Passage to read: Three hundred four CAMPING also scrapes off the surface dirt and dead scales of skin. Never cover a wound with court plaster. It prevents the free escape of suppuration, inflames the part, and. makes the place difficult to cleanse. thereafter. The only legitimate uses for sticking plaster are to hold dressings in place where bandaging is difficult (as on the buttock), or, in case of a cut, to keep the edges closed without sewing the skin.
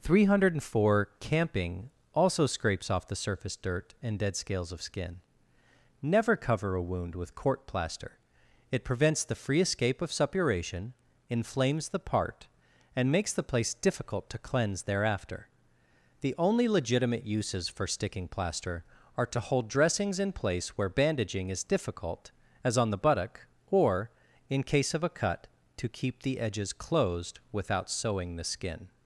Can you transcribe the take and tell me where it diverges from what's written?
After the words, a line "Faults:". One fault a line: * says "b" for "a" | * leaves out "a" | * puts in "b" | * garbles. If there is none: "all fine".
Three hundred four CAMPING also scrapes off the surface dirt and dead scales of skin. Never cover a wound with court plaster. It prevents the free escape of suppuration, inflames the part, and. makes the place difficult to cleanse. thereafter. The only legitimate uses for sticking plaster are to hold dressings in place where bandaging is difficult (as on the buttock), or, in case of a cut, to keep the edges closed without sewing the skin.
Faults:
all fine